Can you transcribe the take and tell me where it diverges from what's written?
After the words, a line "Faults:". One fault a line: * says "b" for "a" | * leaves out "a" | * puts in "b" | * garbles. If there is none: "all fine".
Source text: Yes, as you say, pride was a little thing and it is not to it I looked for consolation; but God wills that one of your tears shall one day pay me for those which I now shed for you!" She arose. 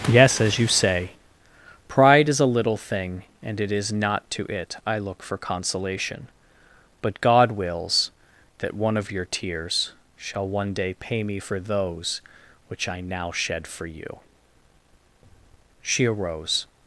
Yes, as you say, pride is a little thing and it is not to it I look for consolation; but God wills that one of your tears shall one day pay me for those which I now shed for you!" She arose.
Faults:
* says "is" for "was"
* says "look" for "looked"